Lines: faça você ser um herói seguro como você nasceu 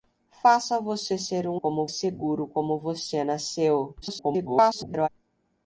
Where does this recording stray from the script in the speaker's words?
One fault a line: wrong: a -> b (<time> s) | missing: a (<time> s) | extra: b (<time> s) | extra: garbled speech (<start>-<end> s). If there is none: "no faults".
wrong: herói -> como (1.6 s)
extra: garbled speech (4.0-5.1 s)